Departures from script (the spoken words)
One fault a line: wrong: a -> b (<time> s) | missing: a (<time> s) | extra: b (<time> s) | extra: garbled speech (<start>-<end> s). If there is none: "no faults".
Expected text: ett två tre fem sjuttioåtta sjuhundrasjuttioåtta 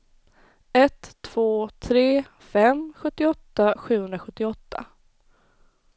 no faults